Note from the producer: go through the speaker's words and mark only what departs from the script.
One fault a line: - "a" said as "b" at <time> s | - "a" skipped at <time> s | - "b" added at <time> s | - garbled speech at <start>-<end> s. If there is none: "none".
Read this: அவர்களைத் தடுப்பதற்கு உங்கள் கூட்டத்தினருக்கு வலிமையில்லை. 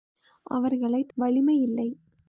- "தடுப்பதற்கு உங்கள் கூட்டத்தினருக்கு" skipped at 1.1 s